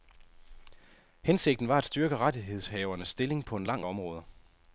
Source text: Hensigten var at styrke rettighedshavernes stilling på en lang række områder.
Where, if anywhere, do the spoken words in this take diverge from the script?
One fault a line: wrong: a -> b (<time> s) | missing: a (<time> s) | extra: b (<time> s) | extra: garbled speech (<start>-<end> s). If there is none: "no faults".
missing: række (3.9 s)